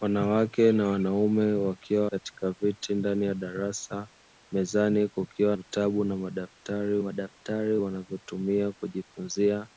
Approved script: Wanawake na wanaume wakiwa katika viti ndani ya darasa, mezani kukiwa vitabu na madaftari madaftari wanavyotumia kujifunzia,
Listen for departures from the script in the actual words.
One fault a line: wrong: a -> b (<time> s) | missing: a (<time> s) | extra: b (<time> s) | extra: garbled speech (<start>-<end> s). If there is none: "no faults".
no faults